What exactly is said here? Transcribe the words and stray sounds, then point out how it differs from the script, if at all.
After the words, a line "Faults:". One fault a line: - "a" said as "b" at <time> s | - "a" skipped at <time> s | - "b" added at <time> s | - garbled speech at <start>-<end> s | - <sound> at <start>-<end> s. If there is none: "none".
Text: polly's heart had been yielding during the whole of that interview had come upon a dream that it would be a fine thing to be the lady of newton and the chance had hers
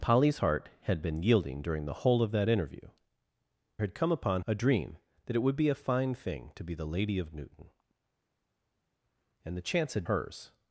polly's heart had been yielding during the whole of that interview had come upon a dream that it would be a fine thing to be the lady of newton and the chance had hers
Faults:
none